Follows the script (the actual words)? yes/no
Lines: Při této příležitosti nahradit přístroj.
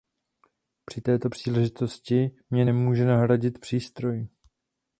no